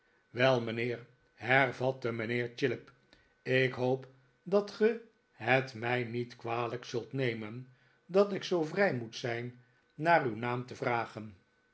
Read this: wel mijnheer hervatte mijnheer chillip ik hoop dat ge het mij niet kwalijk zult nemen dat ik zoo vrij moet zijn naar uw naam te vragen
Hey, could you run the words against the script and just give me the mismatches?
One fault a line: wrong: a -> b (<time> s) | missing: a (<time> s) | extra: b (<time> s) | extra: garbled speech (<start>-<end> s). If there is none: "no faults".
no faults